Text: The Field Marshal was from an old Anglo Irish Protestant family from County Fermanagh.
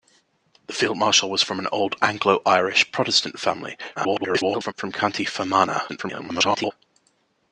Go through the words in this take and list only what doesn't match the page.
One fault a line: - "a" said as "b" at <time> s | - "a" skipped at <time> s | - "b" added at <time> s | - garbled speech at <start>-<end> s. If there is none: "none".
- garbled speech at 4.0-4.7 s
- garbled speech at 5.9-6.7 s